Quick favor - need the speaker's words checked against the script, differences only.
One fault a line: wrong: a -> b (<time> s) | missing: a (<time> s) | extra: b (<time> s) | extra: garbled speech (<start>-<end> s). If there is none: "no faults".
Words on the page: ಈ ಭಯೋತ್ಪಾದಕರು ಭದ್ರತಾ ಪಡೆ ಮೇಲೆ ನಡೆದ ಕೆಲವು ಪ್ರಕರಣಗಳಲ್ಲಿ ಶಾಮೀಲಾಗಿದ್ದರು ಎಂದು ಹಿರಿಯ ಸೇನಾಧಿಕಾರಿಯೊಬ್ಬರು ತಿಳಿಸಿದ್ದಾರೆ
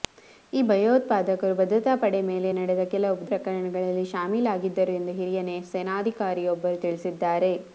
no faults